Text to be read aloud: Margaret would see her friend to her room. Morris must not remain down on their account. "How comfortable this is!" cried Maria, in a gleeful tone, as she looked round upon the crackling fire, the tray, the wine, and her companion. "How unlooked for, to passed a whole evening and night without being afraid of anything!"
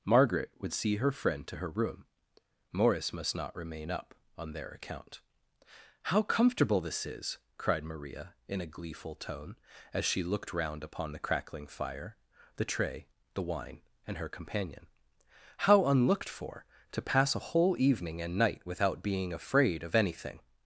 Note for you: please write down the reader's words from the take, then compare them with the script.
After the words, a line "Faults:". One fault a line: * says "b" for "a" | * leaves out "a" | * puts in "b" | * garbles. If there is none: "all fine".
Margaret would see her friend to her room. Morris must not remain up on their account. "How comfortable this is!" cried Maria, in a gleeful tone, as she looked round upon the crackling fire, the tray, the wine, and her companion. "How unlooked for, to pass a whole evening and night without being afraid of anything!"
Faults:
* says "up" for "down"
* says "pass" for "passed"